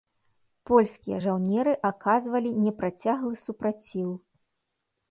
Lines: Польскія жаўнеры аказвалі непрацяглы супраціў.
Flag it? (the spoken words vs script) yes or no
no